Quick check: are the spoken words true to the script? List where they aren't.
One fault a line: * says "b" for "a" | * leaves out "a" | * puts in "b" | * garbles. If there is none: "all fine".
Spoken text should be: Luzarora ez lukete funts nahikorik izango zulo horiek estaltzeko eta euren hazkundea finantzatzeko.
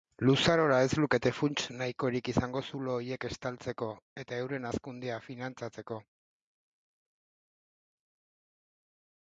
all fine